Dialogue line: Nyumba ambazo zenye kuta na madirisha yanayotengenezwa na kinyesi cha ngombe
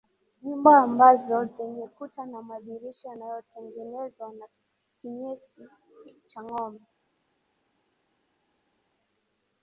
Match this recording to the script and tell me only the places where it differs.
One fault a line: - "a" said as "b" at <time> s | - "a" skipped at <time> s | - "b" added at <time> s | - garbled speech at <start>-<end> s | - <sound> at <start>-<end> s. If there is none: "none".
none